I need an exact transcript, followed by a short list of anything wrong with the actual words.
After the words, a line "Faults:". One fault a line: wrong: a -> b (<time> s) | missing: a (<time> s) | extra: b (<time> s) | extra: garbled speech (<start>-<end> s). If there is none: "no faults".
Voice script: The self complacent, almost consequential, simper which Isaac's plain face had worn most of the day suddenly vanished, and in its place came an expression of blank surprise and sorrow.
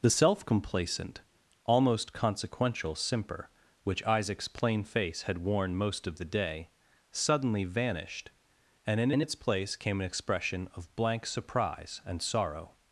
The self complacent, almost consequential, simper which Isaac's plain face had worn most of the day suddenly vanished, and in in its place came an expression of blank surprise and sorrow.
Faults:
extra: in (9.1 s)